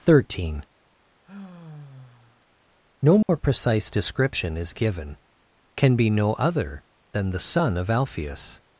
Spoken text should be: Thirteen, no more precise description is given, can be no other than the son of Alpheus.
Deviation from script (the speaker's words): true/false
false